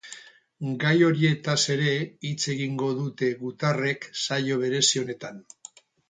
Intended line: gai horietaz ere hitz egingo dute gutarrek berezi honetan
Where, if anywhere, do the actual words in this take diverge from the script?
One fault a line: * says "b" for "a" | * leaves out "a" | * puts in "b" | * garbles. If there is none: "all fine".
* puts in "saio"